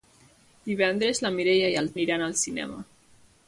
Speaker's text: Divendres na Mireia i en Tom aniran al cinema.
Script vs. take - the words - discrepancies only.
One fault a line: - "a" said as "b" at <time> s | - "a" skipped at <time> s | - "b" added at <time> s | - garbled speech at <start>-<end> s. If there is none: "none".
- "Tom" skipped at 1.9 s